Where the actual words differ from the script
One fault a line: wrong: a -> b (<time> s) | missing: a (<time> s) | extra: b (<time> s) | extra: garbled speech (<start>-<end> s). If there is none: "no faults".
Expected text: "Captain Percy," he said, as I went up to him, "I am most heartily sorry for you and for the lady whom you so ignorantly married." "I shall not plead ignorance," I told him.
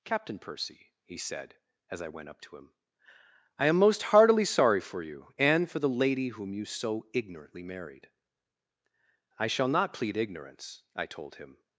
no faults